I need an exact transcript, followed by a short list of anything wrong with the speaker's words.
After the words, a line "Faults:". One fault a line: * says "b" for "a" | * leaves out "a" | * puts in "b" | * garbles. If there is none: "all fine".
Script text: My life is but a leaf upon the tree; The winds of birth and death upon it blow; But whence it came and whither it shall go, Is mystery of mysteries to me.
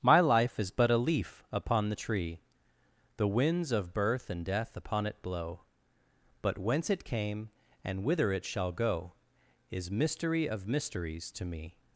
My life is but a leaf upon the tree; The winds of birth and death upon it blow; But whence it came and whither it shall go, Is mystery of mysteries to me.
Faults:
all fine